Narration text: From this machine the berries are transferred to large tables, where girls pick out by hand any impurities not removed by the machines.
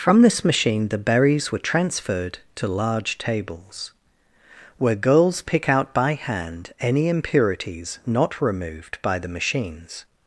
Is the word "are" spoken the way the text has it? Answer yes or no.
no